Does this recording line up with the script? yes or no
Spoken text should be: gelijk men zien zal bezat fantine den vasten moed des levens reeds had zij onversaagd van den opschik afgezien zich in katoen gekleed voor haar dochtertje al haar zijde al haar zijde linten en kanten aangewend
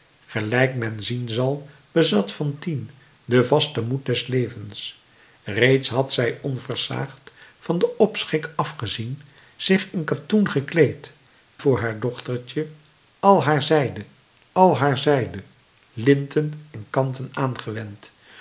yes